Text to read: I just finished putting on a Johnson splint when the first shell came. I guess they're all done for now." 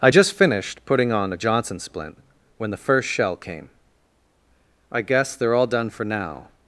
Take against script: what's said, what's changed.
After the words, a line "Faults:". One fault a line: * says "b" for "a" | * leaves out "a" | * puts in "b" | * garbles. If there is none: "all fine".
I just finished putting on a Johnson splint when the first shell came. I guess they're all done for now."
Faults:
all fine